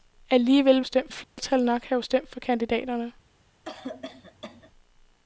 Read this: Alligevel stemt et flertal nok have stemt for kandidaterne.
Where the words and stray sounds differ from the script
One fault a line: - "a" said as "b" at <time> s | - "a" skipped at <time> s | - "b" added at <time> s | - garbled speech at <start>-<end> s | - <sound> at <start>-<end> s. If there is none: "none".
- dropout at 1.2-1.4 s
- cough at 3.6-4.7 s